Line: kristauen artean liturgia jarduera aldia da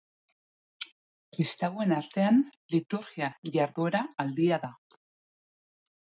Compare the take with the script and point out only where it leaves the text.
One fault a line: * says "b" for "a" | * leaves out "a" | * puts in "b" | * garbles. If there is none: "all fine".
all fine